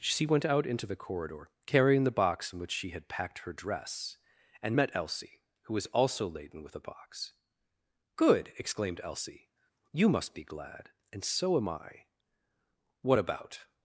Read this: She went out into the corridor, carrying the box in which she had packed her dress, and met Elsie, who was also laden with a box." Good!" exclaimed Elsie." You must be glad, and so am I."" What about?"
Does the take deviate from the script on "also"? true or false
false